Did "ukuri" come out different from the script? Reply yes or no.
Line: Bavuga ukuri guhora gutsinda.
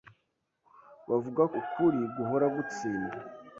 no